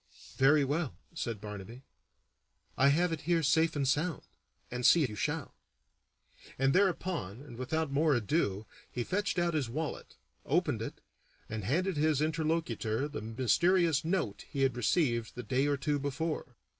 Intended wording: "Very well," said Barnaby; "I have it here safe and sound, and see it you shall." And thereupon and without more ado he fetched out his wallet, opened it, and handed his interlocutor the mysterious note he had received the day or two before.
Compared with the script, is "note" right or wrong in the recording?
right